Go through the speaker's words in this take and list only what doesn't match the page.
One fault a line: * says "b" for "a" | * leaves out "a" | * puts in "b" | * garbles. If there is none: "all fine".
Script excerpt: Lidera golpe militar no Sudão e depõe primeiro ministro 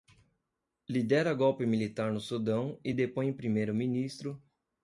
all fine